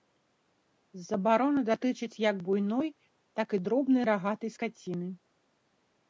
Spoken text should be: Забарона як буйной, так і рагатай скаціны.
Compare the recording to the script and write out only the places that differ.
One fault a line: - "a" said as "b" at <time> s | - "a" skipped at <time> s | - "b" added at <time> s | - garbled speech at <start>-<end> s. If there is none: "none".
- "датычыць" added at 1.7 s
- "дробнай" added at 3.7 s